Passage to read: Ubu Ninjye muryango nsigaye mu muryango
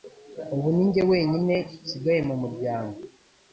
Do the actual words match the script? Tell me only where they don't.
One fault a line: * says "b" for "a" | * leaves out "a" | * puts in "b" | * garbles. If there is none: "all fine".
* says "wenyine" for "muryango"